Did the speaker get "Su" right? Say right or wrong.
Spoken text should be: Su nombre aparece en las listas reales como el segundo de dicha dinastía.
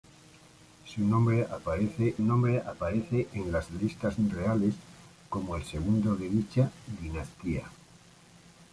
right